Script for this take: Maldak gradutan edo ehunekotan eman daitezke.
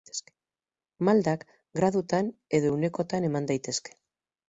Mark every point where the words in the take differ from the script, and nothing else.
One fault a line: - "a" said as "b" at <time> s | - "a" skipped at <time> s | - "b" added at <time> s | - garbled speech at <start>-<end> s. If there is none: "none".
none